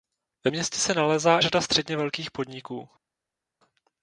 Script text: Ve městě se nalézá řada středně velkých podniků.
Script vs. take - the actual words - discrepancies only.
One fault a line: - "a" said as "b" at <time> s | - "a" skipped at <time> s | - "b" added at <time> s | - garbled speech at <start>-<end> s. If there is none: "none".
none